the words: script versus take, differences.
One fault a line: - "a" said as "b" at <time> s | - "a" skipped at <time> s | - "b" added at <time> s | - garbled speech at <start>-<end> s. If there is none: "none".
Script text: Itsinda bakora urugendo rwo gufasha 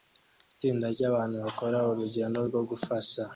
- "ryabantu" added at 0.9 s